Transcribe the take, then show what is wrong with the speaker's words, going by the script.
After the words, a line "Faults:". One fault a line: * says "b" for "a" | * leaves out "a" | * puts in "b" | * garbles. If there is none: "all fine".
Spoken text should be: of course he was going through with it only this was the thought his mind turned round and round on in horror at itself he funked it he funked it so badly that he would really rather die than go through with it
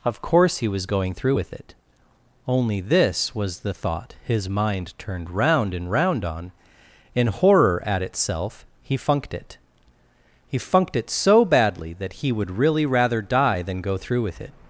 of course he was going through with it only this was the thought his mind turned round and round on in horror at itself he funked it he funked it so badly that he would really rather die than go through with it
Faults:
all fine